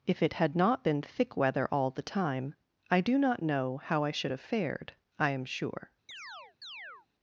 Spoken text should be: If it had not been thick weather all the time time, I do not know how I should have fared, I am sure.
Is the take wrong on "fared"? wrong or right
right